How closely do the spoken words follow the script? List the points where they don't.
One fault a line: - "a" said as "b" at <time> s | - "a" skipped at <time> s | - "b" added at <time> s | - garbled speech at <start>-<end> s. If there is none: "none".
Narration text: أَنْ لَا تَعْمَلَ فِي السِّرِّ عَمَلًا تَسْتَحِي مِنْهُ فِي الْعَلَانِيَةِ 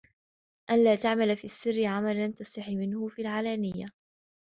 none